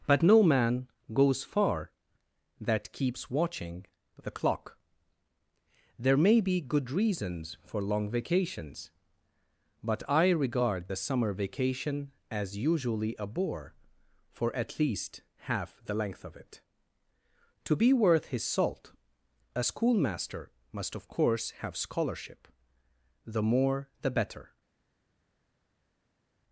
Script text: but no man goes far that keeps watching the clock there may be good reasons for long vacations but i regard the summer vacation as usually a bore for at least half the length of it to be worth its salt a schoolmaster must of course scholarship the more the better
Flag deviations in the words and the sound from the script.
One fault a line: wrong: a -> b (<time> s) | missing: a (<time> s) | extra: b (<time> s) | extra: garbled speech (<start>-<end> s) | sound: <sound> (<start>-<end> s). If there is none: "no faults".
wrong: its -> his (18.3 s)
extra: have (21.6 s)